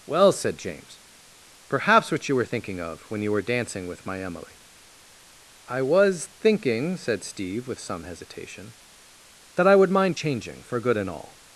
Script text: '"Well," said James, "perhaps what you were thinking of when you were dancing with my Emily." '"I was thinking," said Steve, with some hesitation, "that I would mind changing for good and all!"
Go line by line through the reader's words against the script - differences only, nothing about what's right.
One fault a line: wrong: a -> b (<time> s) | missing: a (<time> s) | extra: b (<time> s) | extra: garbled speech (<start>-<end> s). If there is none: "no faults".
no faults